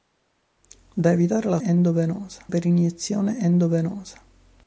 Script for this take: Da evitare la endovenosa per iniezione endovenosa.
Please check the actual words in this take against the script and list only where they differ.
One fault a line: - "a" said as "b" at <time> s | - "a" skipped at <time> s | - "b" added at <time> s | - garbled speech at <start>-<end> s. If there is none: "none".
none